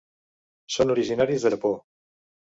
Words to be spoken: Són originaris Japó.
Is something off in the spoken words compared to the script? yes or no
no